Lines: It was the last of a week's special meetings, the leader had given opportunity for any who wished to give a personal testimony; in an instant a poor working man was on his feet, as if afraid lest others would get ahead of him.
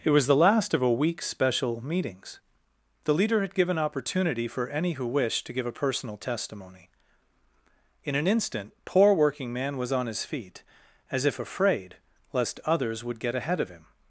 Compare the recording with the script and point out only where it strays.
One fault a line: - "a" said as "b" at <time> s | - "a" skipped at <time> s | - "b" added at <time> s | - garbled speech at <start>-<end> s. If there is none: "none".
- "a" skipped at 8.7 s